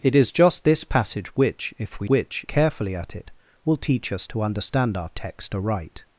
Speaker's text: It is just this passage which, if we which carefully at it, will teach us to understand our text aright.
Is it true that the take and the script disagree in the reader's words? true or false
false